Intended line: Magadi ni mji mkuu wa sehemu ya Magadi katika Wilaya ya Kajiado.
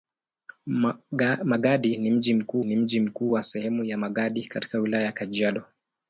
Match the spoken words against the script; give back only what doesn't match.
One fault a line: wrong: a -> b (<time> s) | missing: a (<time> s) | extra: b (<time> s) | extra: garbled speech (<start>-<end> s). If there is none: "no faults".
extra: ni mji mkuu (2.6 s)